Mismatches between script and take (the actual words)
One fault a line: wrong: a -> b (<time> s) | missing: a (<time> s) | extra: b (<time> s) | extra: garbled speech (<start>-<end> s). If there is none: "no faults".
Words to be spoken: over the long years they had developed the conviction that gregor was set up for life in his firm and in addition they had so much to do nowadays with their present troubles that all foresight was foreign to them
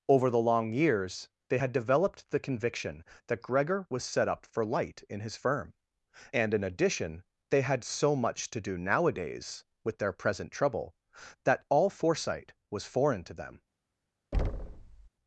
wrong: life -> light (4.6 s)
wrong: troubles -> trouble (10.5 s)